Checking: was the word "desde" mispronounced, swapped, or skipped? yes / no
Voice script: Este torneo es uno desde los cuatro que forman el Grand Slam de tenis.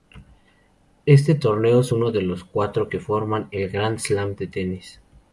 yes